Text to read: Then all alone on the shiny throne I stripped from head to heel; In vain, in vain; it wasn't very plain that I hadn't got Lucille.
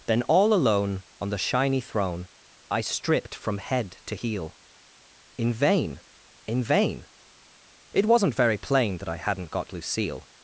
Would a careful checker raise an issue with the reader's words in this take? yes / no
no